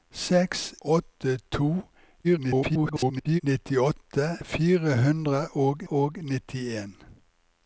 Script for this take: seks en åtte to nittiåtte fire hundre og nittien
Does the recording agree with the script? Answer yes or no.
no